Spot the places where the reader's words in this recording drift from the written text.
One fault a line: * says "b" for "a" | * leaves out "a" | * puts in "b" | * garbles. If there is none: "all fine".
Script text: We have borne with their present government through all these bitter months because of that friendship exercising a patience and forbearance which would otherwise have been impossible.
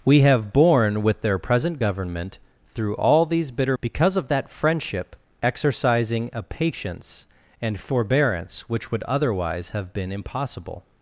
* leaves out "months"